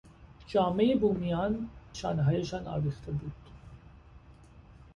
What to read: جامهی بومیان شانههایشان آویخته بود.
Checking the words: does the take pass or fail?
pass